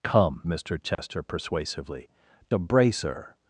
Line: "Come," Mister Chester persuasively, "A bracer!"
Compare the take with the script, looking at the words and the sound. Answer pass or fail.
fail